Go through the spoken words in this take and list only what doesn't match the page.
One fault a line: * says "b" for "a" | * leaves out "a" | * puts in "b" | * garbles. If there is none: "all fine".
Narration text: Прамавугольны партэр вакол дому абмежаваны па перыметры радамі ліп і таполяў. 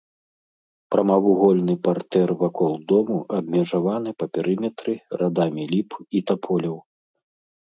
all fine